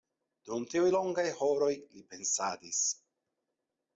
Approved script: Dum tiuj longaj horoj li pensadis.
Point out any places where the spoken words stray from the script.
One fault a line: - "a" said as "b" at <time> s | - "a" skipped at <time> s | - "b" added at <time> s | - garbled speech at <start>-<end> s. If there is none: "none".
none